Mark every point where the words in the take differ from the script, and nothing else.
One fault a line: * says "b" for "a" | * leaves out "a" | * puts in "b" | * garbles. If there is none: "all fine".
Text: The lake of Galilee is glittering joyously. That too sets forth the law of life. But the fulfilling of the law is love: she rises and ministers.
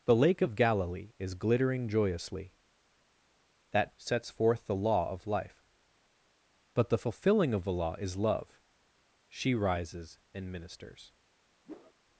* leaves out "too"